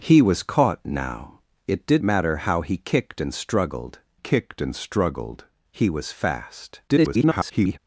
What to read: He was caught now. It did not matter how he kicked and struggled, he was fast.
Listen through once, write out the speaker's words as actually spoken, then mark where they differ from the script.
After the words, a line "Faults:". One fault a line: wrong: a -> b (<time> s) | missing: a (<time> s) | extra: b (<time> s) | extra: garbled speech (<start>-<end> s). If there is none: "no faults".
He was caught now. It did matter how he kicked and struggled kicked and struggled, he was fast. [garbled]
Faults:
missing: not (2.0 s)
extra: kicked and struggled (4.1 s)
extra: garbled speech (6.9-7.8 s)